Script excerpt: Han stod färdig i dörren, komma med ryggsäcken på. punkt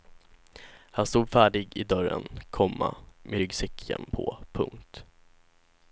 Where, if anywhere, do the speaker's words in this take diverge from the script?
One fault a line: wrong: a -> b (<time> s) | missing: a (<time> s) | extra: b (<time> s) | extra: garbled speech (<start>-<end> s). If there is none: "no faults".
no faults